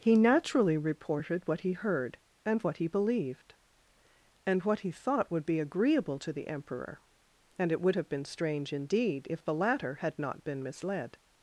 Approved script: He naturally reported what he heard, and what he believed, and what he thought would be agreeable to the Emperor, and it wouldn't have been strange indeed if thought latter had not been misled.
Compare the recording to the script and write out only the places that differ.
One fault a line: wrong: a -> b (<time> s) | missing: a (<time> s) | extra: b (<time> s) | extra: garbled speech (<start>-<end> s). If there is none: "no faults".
wrong: wouldn't -> would (7.8 s)
wrong: thought -> the (9.4 s)